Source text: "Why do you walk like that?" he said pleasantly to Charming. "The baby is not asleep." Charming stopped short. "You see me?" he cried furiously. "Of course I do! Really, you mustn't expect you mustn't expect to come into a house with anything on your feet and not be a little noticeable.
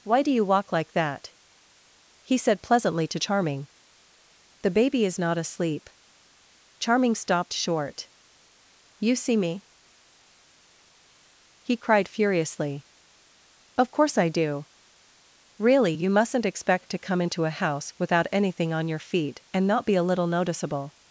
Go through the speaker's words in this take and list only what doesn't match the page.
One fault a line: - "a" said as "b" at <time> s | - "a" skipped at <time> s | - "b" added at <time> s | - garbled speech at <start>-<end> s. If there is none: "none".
- "you mustn't expect" skipped at 16.9 s
- "with" said as "without" at 18.0 s